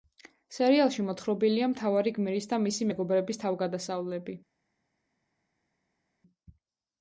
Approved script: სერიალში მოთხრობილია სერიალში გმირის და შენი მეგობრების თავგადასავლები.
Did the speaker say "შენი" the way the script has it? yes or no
no